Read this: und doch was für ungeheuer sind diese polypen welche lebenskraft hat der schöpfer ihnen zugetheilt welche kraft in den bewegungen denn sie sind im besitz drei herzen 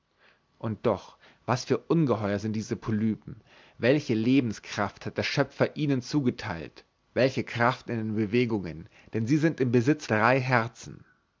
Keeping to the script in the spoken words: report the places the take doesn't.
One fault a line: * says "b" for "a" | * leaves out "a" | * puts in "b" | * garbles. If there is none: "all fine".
all fine